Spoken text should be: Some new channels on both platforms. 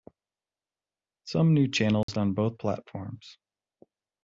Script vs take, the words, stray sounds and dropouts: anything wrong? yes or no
yes